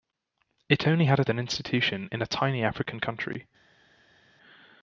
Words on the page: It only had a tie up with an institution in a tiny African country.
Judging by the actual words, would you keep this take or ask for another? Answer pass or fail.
fail